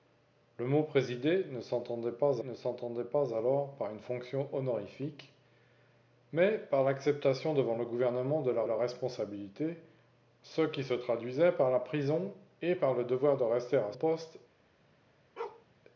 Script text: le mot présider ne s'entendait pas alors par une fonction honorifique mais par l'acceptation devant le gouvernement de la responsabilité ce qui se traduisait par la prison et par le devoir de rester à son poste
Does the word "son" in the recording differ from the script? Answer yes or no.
yes